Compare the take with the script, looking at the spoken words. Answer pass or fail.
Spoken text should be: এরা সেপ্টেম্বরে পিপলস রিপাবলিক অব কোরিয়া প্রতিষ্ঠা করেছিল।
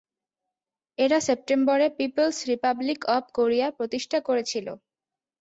pass